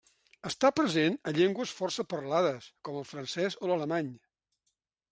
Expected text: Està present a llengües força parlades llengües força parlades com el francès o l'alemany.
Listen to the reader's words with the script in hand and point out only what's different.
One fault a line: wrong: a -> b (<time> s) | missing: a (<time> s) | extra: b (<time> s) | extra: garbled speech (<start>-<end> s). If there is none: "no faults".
missing: llengües força parlades (2.7 s)